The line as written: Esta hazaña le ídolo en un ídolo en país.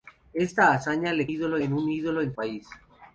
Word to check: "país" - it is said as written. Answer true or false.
true